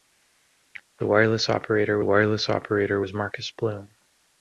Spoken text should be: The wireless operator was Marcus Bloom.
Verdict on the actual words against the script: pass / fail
fail